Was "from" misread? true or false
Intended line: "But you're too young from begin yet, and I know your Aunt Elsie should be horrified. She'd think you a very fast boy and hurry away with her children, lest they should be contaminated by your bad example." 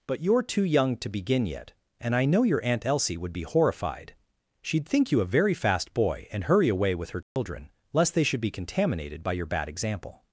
true